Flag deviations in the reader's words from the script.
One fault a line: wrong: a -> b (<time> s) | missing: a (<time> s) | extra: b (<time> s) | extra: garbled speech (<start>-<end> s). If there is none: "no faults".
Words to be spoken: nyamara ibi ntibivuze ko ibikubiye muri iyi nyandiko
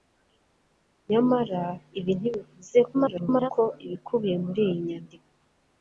extra: garbled speech (2.9-3.5 s)